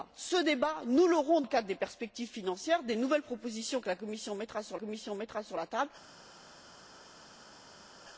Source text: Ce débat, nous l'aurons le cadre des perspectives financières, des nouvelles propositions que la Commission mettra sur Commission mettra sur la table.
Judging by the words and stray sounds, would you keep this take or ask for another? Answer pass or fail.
pass